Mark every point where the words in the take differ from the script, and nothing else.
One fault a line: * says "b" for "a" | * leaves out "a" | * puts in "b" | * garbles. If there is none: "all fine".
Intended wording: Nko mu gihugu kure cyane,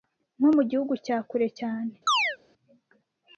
* puts in "cya"